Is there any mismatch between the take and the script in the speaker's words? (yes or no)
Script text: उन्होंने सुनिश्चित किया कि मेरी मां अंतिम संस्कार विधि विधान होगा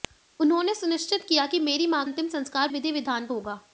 no